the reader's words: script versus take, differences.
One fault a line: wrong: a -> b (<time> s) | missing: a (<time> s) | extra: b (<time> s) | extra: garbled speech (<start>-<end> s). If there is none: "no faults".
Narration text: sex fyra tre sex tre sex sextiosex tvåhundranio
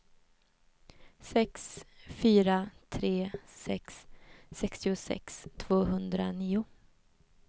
missing: tre sex (4.1 s)